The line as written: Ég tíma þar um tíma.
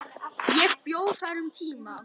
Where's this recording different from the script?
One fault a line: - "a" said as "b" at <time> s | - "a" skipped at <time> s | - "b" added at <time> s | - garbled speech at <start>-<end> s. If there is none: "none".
- "tíma" said as "bjó" at 0.9 s